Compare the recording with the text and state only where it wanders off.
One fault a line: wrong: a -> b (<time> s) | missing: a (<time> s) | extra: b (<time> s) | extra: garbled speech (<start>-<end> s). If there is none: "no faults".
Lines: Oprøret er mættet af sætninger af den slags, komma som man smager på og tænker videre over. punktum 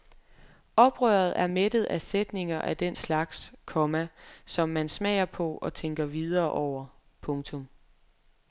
no faults